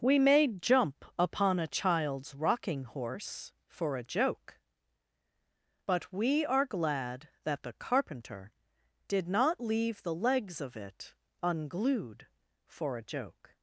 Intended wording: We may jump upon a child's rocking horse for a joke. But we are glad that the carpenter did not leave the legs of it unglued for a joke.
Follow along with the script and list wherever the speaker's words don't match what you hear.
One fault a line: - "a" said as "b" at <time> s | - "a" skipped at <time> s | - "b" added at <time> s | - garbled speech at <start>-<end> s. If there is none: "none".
none